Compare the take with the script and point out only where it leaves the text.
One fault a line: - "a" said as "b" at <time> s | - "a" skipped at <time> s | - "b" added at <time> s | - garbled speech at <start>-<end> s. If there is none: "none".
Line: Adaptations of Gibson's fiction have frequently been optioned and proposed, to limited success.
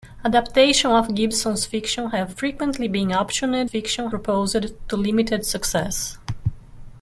- "and" said as "fiction" at 3.6 s